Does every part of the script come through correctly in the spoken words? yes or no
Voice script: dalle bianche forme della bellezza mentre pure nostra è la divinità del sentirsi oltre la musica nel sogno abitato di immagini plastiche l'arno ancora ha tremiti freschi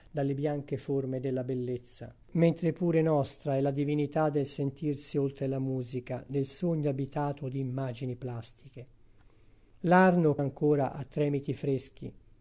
yes